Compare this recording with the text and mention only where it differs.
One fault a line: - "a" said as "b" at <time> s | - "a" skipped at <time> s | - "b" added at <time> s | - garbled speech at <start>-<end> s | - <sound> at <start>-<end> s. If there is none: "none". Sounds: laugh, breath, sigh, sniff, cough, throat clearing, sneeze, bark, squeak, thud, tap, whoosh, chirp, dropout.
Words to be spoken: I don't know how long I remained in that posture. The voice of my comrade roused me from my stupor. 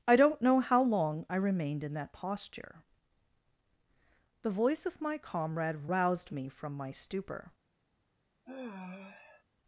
- sigh at 8.4-9.4 s